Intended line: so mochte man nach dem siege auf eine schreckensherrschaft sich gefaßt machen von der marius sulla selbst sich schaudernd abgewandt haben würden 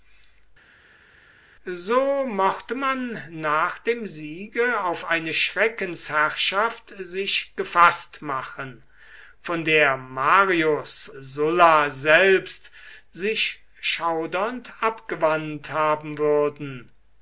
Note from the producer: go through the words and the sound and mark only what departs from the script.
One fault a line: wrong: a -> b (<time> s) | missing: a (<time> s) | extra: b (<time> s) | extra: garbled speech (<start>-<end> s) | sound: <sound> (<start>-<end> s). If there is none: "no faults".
no faults